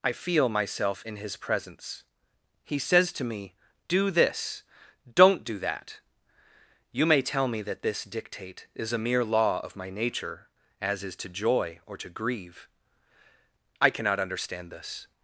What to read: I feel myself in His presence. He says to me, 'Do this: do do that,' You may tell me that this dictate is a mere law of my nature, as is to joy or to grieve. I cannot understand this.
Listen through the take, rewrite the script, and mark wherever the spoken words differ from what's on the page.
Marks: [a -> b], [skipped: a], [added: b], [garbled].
I feel myself in His presence. He says to me, 'Do this: [do -> don't] do that,' You may tell me that this dictate is a mere law of my nature, as is to joy or to grieve. I cannot understand this.